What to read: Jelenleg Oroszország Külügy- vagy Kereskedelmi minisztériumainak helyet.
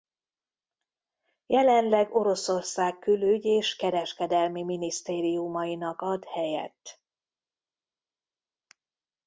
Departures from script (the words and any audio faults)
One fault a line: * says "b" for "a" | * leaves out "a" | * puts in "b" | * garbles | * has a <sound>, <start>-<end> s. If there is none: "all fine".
* says "és" for "vagy"
* puts in "ad"